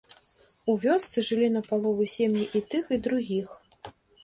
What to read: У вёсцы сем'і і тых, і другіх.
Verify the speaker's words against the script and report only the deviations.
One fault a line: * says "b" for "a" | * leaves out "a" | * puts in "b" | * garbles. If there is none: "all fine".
* puts in "жылі напалову"